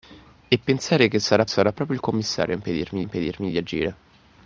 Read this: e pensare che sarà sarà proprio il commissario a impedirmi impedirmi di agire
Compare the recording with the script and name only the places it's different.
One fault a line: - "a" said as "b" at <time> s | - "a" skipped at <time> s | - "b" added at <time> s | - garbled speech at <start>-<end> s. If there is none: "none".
none